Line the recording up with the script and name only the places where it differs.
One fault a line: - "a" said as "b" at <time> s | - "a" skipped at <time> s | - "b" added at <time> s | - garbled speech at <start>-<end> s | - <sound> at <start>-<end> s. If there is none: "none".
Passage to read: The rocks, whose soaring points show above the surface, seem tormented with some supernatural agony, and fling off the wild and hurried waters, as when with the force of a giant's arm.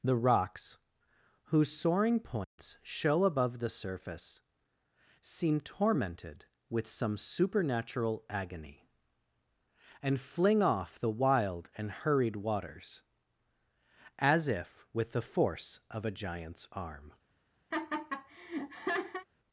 - dropout at 2.4-2.6 s
- "when" said as "if" at 14.5 s
- laugh at 17.7-19.3 s